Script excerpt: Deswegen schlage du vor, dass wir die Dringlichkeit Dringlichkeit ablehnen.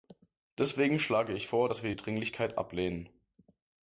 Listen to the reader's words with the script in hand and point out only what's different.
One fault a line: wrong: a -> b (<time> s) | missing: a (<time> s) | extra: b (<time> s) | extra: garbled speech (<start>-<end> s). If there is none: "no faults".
wrong: du -> ich (1.4 s)
missing: Dringlichkeit (2.6 s)